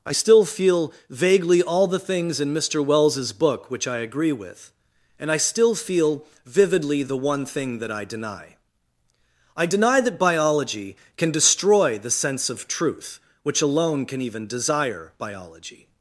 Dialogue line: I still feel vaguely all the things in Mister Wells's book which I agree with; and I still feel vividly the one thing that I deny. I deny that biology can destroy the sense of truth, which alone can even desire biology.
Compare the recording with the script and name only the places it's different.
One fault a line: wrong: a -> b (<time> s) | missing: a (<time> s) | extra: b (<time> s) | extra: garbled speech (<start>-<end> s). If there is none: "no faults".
no faults